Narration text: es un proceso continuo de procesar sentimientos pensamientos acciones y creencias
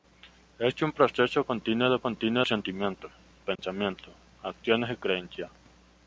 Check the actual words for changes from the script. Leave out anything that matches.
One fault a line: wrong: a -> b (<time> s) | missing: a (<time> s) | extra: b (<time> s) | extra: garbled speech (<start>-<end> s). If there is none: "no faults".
wrong: procesar -> continuo (2.0 s)